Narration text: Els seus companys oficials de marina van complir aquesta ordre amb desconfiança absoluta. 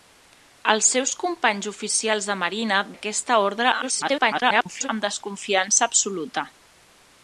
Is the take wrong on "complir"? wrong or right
wrong